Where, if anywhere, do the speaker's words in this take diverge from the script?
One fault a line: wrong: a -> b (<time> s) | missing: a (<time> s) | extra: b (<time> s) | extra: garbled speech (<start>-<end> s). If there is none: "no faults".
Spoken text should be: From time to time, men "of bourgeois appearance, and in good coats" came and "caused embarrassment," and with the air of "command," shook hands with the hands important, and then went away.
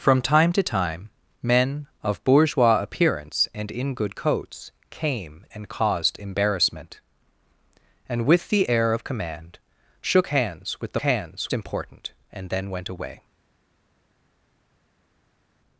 no faults